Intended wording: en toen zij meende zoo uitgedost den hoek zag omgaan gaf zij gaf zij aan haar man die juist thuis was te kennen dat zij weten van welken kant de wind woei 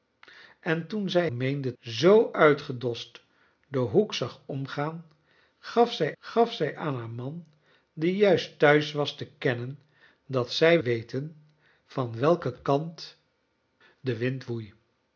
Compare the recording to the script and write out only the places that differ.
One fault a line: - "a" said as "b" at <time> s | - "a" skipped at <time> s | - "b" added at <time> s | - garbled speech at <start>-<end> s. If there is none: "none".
none